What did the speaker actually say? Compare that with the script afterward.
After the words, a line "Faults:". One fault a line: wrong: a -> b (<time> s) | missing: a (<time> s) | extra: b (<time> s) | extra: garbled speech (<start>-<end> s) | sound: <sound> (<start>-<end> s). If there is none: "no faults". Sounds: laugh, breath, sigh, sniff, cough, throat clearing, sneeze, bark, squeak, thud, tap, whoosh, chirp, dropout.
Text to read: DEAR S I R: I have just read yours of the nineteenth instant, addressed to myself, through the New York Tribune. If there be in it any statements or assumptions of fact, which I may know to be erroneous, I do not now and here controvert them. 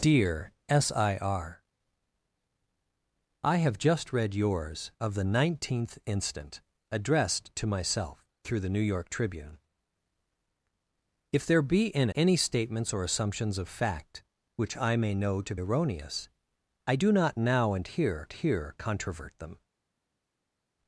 DEAR S I R: I have just read yours of the nineteenth instant, addressed to myself, through the New York Tribune. If there be in any statements or assumptions of fact, which I may know to erroneous, I do not now and here here controvert them.
Faults:
missing: it (12.1 s)
missing: be (15.6 s)
extra: here (18.3 s)